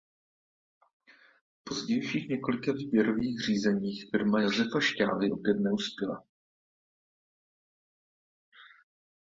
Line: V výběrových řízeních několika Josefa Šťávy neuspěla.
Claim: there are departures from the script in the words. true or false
true